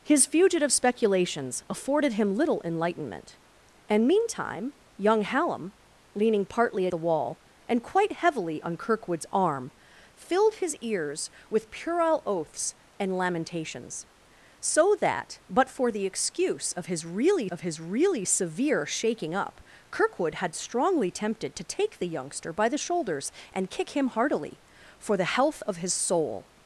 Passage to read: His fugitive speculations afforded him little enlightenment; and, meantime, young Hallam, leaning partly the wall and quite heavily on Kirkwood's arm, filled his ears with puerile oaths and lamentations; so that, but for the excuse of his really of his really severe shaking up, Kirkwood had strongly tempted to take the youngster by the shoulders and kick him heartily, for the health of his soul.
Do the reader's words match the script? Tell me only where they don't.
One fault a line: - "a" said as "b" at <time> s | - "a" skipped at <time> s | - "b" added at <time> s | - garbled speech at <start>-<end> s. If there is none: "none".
none